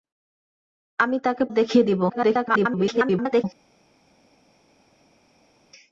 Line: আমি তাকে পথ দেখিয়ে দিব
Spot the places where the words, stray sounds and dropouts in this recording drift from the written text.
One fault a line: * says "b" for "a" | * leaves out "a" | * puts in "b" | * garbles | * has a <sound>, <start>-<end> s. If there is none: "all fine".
* leaves out "পথ"
* garbles